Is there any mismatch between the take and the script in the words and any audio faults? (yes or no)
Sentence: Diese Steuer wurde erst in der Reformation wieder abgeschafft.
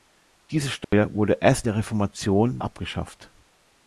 yes